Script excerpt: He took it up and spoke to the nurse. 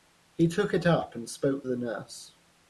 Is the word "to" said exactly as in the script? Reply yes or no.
no